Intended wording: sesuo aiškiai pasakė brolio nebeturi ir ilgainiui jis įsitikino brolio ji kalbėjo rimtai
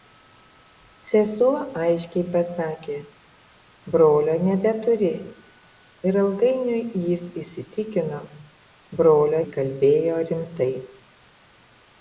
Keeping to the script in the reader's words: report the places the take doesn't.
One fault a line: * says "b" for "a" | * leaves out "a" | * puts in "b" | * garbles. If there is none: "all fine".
all fine